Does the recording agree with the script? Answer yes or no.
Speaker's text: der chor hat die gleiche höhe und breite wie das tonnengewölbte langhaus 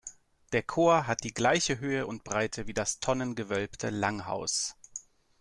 yes